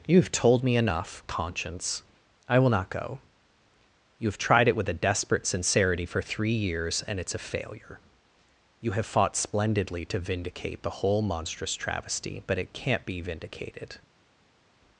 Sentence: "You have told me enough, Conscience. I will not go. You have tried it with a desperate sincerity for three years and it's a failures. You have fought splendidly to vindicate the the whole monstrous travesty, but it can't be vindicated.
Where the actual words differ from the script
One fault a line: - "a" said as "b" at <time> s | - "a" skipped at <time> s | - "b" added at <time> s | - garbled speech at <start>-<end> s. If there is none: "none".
- "failures" said as "failure" at 7.4 s
- "the" skipped at 11.0 s